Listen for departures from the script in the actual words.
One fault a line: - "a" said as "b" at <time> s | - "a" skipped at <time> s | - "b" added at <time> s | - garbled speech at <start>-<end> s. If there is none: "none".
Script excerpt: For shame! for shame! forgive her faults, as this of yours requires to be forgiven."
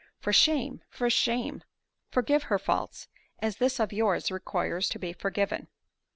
none